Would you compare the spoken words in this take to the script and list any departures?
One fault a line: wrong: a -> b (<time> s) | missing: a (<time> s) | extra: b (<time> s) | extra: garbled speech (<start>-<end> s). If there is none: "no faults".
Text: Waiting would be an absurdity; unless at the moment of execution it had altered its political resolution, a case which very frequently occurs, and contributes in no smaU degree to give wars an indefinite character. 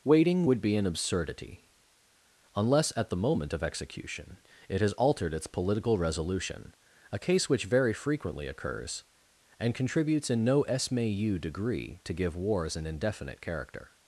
wrong: had -> has (4.8 s)